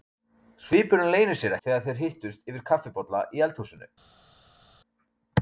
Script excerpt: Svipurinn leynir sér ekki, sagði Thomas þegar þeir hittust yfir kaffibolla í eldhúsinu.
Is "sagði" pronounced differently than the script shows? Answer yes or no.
yes